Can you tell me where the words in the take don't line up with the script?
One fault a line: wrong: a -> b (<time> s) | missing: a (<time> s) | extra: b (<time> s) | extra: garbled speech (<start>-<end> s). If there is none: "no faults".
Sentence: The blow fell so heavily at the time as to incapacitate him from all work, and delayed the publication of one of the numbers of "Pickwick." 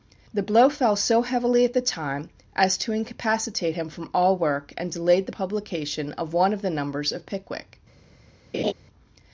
no faults